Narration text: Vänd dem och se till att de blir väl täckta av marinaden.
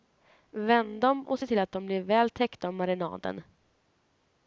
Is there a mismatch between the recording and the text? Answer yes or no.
no